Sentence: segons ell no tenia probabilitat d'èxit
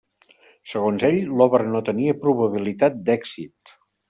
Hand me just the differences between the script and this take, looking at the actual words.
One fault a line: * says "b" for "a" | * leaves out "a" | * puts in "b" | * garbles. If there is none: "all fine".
* puts in "l'obra"